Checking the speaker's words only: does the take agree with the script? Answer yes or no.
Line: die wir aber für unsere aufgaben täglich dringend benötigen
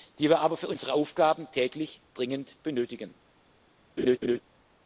yes